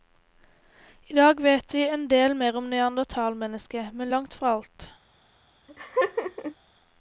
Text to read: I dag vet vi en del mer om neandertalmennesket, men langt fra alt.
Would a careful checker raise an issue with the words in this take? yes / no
no